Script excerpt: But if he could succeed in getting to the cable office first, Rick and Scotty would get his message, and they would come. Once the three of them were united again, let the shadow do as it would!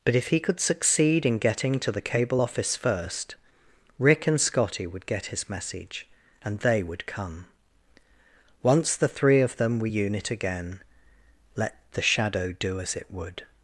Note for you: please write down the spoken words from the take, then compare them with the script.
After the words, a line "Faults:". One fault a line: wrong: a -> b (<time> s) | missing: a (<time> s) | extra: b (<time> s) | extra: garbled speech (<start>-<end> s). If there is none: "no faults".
But if he could succeed in getting to the cable office first, Rick and Scotty would get his message, and they would come. Once the three of them were unit again, let the shadow do as it would!
Faults:
wrong: united -> unit (9.8 s)